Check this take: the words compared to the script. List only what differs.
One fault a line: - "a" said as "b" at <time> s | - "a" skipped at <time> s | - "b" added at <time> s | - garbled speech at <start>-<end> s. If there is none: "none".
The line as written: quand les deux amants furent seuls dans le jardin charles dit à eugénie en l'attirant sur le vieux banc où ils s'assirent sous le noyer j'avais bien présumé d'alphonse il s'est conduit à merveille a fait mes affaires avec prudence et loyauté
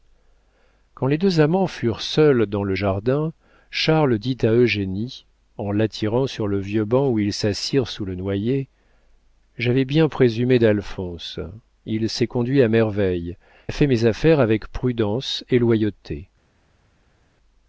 none